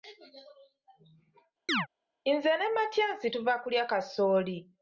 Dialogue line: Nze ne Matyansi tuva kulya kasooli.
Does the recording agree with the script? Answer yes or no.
yes